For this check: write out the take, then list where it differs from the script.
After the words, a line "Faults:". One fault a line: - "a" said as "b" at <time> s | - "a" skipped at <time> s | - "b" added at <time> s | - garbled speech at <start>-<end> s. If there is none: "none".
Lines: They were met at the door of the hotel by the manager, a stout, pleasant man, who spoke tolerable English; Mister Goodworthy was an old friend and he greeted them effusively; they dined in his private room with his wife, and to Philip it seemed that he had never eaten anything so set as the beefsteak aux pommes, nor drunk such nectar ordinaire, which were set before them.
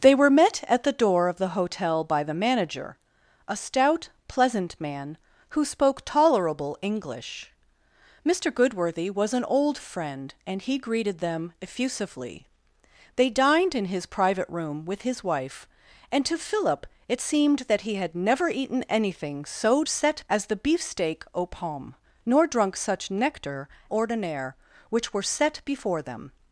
They were met at the door of the hotel by the manager, a stout, pleasant man, who spoke tolerable English; Mister Goodworthy was an old friend and he greeted them effusively; they dined in his private room with his wife, and to Philip it seemed that he had never eaten anything so set as the beefsteak aux pommes, nor drunk such nectar ordinaire, which were set before them.
Faults:
none